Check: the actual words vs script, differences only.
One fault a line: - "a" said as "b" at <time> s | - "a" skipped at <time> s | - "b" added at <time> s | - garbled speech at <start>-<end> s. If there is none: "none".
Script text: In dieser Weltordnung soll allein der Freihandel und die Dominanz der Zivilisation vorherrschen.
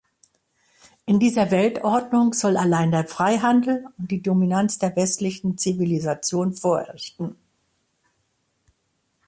- "westlichen" added at 5.0 s